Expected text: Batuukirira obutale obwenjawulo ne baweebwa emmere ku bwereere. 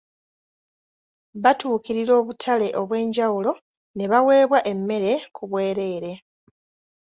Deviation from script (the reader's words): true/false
false